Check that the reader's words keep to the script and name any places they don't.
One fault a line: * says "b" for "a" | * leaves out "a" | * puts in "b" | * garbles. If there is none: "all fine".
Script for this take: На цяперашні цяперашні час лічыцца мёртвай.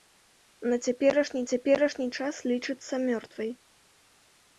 all fine